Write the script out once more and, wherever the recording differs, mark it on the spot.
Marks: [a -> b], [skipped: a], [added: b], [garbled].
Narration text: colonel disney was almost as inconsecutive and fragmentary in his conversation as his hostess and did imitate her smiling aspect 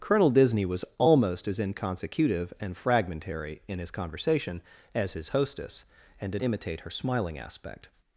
colonel disney was almost as inconsecutive and fragmentary in his conversation as his hostess and did imitate her smiling aspect